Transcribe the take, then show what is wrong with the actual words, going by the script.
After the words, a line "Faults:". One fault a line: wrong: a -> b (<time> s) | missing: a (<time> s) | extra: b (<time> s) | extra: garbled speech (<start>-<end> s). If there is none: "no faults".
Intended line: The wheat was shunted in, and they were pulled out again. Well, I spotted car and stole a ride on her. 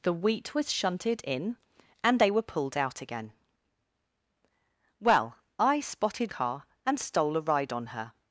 The wheat was shunted in, and they were pulled out again. Well, I spotted car and stole a ride on her.
Faults:
no faults